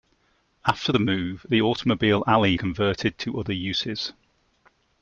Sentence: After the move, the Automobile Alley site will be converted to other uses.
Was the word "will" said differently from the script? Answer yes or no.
yes